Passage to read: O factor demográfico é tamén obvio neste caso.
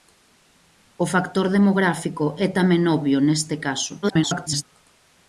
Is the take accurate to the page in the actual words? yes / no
no